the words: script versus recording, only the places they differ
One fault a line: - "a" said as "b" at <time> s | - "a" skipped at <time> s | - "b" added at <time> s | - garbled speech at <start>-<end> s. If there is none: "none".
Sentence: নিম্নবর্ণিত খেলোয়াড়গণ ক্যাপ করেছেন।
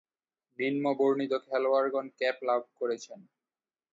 - "লাভ" added at 2.5 s